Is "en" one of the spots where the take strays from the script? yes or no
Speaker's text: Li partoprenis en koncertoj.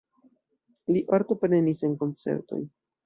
no